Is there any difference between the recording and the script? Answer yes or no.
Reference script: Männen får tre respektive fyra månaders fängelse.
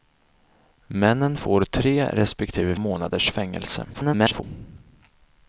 yes